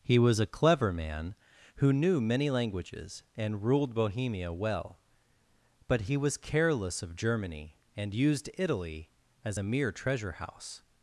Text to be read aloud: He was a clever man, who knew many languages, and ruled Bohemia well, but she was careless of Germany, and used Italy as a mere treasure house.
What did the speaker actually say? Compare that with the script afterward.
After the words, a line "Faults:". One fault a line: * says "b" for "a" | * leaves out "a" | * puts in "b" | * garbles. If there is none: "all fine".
He was a clever man, who knew many languages, and ruled Bohemia well, but he was careless of Germany, and used Italy as a mere treasure house.
Faults:
* says "he" for "she"